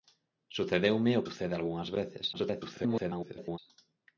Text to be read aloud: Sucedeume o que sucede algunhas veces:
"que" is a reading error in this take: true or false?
true